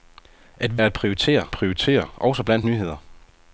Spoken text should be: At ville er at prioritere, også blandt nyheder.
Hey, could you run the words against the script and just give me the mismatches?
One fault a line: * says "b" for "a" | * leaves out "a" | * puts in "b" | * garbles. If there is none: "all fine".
* leaves out "ville"
* puts in "prioritere"